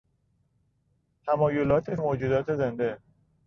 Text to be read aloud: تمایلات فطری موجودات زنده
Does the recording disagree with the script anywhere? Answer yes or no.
yes